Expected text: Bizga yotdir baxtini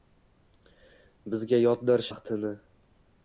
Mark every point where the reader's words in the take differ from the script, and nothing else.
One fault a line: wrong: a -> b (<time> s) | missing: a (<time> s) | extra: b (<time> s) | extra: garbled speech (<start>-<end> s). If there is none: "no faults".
no faults